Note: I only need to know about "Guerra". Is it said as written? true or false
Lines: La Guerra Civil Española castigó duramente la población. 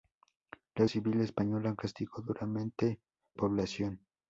false